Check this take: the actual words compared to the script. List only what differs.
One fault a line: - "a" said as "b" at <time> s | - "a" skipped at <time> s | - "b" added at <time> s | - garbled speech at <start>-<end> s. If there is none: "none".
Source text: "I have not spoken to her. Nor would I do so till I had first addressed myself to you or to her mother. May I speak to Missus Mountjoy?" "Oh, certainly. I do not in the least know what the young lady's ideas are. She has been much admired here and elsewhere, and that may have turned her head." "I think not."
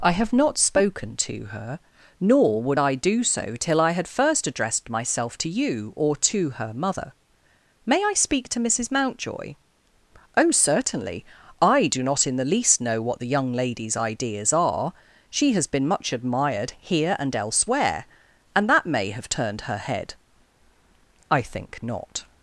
none